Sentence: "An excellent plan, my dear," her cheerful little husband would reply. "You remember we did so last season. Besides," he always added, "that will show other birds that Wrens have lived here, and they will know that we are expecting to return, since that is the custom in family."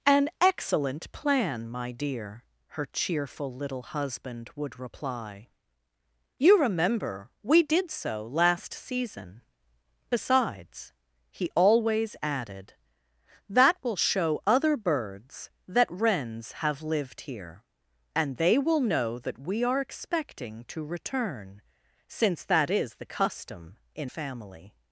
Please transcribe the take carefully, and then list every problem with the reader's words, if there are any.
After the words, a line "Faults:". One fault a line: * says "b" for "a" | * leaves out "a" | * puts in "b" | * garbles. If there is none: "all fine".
"An excellent plan, my dear," her cheerful little husband would reply. "You remember we did so last season. Besides," he always added, "that will show other birds that Wrens have lived here, and they will know that we are expecting to return, since that is the custom in family."
Faults:
all fine